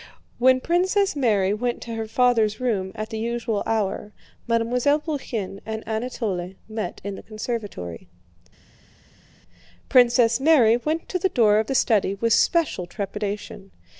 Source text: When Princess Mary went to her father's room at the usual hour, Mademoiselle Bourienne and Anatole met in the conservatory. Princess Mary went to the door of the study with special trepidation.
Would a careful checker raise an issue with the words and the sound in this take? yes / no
no